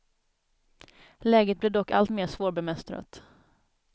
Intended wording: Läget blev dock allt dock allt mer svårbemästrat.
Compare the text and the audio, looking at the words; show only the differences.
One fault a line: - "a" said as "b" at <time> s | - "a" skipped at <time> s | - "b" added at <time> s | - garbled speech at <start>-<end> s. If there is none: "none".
- "dock allt" skipped at 2.1 s